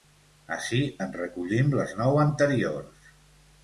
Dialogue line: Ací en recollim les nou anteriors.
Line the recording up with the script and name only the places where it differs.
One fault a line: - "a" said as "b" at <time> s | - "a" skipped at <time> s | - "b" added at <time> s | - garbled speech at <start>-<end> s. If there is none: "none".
none